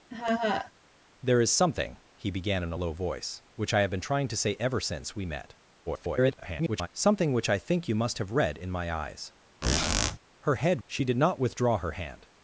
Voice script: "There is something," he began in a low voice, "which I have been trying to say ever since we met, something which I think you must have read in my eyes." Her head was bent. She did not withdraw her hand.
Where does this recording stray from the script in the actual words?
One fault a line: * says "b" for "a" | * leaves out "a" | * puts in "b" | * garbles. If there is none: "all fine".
* garbles
* leaves out "was bent"